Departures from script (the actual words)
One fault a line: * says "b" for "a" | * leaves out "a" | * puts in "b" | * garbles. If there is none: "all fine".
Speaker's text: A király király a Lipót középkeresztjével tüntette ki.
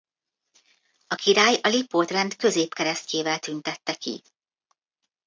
* leaves out "király"
* puts in "rend"